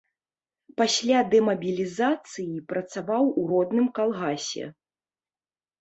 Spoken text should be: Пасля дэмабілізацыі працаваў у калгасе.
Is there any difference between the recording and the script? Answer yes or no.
yes